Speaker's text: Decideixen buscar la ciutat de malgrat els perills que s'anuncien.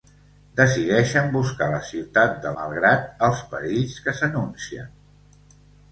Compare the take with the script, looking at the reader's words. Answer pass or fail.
pass